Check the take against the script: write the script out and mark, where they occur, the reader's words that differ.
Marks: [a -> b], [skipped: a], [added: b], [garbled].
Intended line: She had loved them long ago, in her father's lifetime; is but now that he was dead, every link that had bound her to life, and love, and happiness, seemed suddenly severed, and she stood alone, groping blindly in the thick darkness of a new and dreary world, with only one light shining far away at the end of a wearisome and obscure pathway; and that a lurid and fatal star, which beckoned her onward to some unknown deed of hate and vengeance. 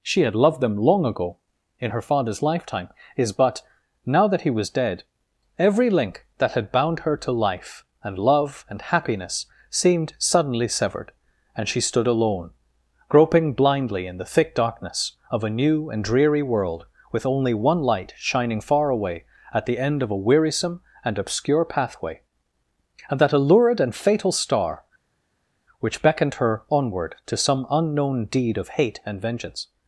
She had loved them long ago, in her father's lifetime; is but now that he was dead, every link that had bound her to life, and love, and happiness, seemed suddenly severed, and she stood alone, groping blindly in the thick darkness of a new and dreary world, with only one light shining far away at the end of a wearisome and obscure pathway; and that a lurid and fatal star, which beckoned her onward to some unknown deed of hate and vengeance.